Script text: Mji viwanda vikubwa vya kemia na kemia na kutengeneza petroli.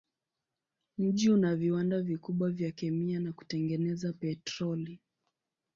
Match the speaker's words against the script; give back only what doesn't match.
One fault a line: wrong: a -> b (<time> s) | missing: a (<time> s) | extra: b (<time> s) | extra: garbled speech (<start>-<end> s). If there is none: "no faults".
extra: una (1.3 s)
missing: kemia na (3.3 s)